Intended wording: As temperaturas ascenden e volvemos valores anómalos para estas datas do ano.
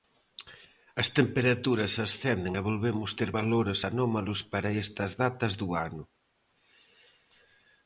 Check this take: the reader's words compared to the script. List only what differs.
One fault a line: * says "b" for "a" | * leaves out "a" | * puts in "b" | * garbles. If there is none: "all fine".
* puts in "ter"